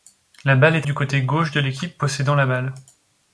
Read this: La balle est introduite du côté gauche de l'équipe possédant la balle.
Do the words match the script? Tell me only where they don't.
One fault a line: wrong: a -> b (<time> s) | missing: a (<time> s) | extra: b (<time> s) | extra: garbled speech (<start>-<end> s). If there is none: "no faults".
missing: introduite (0.9 s)